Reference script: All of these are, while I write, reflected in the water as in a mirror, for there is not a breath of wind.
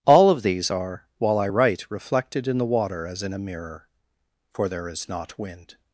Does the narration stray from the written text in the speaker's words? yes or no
yes